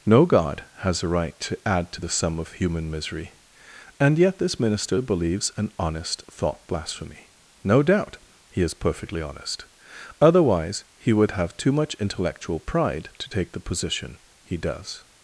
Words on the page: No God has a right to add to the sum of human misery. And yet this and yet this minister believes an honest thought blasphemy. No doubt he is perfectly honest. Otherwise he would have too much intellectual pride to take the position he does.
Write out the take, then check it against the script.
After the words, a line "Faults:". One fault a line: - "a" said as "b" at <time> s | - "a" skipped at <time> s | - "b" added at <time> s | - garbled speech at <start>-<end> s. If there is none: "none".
No God has a right to add to the sum of human misery. And yet this minister believes an honest thought blasphemy. No doubt he is perfectly honest. Otherwise he would have too much intellectual pride to take the position he does.
Faults:
- "and yet this" skipped at 4.6 s